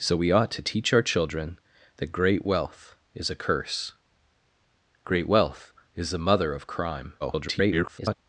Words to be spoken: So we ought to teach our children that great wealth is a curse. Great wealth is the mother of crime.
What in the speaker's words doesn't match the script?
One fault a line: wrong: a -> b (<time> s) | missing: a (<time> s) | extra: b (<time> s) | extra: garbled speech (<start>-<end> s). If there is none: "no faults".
extra: garbled speech (7.2-8.2 s)